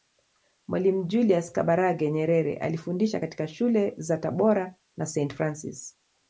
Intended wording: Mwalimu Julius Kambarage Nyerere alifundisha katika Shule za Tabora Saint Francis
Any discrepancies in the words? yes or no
yes